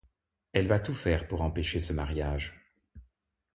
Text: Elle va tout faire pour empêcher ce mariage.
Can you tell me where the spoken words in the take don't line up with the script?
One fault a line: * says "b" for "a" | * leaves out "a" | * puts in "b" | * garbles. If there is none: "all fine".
all fine